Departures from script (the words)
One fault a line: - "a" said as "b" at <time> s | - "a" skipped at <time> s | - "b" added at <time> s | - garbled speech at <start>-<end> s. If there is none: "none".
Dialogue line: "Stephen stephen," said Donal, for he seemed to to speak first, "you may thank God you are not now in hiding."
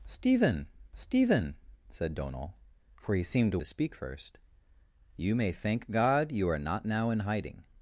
none